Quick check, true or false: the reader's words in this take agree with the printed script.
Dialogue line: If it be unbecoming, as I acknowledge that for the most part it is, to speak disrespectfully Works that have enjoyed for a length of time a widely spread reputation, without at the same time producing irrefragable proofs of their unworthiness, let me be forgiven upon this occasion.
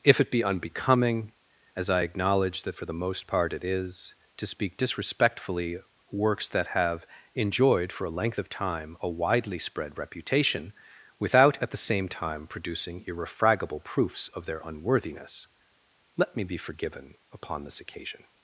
true